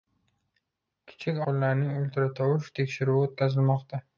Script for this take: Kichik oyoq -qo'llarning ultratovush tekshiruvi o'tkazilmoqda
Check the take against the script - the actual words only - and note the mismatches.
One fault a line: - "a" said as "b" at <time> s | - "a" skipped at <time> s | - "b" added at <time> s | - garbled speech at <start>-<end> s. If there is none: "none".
- "oyoq" skipped at 1.4 s